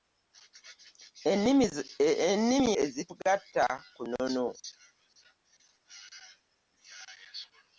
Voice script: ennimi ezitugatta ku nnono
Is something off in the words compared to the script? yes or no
no